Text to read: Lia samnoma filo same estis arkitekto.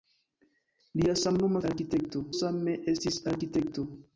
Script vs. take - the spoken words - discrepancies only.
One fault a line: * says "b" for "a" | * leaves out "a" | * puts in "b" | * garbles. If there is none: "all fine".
* says "arkitekto" for "filo"